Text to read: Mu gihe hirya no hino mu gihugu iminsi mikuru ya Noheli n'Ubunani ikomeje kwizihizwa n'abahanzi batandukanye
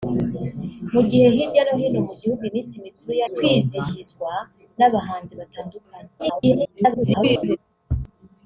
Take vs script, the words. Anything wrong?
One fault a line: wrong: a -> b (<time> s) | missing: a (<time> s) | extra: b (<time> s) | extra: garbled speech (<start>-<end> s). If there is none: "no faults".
missing: Noheli n'Ubunani ikomeje (3.2 s)
extra: garbled speech (6.2-7.6 s)